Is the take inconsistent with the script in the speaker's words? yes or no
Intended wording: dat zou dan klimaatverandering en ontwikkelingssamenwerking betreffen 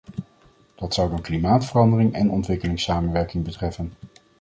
no